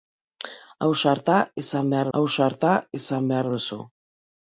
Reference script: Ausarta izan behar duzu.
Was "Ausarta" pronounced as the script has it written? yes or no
yes